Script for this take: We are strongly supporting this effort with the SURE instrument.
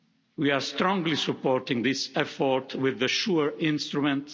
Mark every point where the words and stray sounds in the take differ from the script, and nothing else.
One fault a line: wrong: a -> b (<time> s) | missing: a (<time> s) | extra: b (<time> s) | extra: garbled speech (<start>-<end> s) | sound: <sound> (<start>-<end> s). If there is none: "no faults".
no faults